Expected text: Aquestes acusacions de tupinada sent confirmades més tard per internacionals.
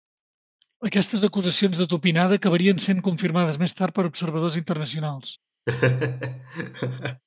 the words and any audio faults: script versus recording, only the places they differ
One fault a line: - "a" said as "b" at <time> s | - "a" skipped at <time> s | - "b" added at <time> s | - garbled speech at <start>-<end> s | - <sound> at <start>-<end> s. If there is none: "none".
- "acabarien" added at 2.4 s
- "observadors" added at 4.1 s
- laugh at 5.7-7.2 s